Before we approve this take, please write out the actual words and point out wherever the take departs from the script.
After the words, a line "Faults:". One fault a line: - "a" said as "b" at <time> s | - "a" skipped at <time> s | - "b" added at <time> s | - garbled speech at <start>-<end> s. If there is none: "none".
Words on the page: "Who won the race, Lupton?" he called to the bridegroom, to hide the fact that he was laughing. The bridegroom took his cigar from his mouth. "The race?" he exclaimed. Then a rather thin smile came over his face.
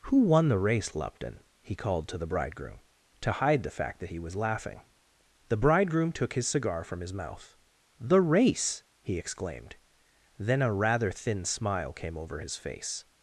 "Who won the race, Lupton?" he called to the bridegroom, to hide the fact that he was laughing. The bridegroom took his cigar from his mouth. "The race?" he exclaimed. Then a rather thin smile came over his face.
Faults:
none